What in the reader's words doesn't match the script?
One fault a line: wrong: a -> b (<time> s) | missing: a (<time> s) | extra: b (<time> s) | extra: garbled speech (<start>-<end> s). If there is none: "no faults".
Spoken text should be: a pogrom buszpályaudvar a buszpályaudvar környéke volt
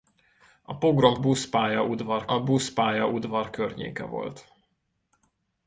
no faults